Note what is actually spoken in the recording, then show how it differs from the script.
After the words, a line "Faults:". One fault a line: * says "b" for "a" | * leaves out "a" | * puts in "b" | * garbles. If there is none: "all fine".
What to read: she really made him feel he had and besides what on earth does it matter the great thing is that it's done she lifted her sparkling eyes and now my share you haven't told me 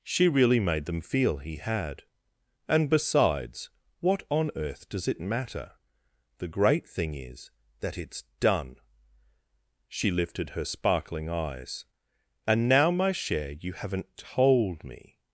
she really made them feel he had and besides what on earth does it matter the great thing is that it's done she lifted her sparkling eyes and now my share you haven't told me
Faults:
* says "them" for "him"